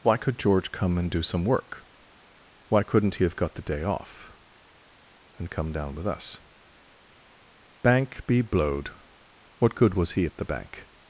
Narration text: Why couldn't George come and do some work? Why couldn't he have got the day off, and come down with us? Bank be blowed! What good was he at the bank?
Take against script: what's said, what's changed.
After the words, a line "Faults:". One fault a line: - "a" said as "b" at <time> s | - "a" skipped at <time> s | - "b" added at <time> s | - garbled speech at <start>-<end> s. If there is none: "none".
Why could George come and do some work? Why couldn't he have got the day off, and come down with us? Bank be blowed! What good was he at the bank?
Faults:
- "couldn't" said as "could" at 0.2 s